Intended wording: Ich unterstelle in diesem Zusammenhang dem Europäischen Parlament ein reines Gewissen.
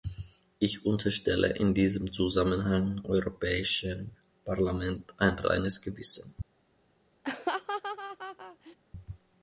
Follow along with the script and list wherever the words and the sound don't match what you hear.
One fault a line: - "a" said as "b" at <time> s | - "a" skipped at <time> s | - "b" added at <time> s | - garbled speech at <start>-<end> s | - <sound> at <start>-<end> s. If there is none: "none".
- "dem" skipped at 3.0 s
- laugh at 7.2-8.8 s